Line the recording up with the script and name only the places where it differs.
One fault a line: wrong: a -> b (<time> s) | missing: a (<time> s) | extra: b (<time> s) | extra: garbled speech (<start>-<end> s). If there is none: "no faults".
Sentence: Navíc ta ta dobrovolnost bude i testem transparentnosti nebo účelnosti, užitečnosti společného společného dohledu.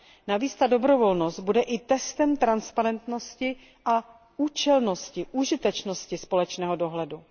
missing: ta (0.7 s)
wrong: nebo -> a (3.8 s)
missing: společného (6.8 s)